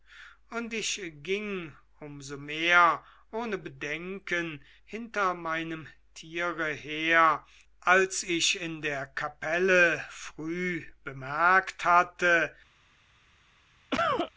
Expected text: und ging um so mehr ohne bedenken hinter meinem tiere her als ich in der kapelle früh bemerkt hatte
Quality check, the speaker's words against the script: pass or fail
fail